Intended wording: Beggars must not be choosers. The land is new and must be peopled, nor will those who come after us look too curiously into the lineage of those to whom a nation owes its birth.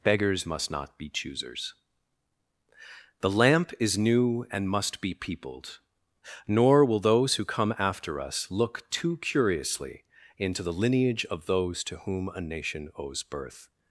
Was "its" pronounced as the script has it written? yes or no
no